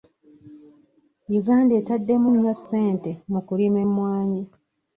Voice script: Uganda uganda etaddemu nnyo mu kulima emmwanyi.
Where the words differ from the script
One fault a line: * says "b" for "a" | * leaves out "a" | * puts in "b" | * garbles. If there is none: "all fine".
* leaves out "uganda"
* puts in "ssente"